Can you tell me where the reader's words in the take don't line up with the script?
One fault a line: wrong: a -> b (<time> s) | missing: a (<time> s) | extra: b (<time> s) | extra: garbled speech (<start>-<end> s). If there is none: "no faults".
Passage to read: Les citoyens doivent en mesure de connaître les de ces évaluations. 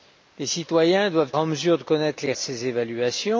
no faults